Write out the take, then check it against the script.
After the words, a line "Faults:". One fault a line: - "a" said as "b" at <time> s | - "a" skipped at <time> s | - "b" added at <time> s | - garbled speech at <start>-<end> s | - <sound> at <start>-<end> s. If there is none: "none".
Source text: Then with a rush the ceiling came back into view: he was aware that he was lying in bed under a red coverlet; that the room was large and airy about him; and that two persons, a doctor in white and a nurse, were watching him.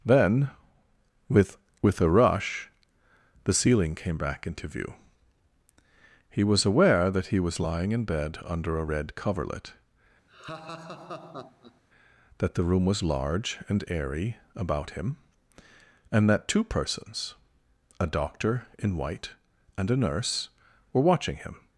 Then with with a rush the ceiling came back into view: he was aware that he was lying in bed under a red coverlet; that the room was large and airy about him; and that two persons, a doctor in white and a nurse, were watching him.
Faults:
- "with" added at 1.8 s
- laugh at 10.3-11.8 s